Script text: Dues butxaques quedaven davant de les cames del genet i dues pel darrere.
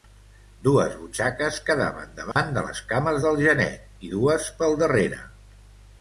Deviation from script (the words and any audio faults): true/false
true